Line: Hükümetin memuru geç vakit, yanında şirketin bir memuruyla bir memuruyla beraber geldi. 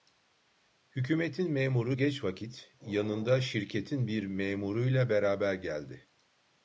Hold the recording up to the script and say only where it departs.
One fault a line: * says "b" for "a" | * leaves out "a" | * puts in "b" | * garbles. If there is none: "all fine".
* leaves out "bir memuruyla"